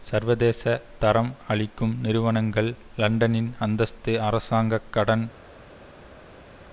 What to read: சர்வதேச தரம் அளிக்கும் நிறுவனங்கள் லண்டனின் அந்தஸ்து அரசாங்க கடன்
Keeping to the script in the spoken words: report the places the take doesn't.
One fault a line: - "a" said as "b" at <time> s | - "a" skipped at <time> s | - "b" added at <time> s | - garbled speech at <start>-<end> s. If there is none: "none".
none